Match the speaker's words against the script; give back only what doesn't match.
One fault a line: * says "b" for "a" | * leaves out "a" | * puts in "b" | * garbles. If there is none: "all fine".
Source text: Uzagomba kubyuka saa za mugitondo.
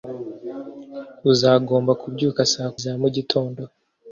all fine